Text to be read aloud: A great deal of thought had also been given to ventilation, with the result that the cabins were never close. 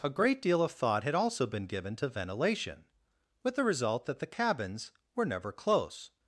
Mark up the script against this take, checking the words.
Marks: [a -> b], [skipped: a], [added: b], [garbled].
A great deal of thought had also been given to ventilation, with the result that the cabins were never close.